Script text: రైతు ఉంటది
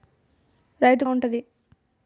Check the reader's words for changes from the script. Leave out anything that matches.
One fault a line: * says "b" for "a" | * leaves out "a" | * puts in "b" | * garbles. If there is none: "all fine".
all fine